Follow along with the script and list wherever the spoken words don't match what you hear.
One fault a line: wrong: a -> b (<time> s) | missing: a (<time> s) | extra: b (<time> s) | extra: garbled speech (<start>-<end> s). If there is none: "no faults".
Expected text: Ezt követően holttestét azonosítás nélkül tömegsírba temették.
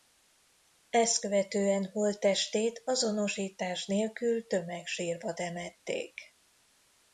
no faults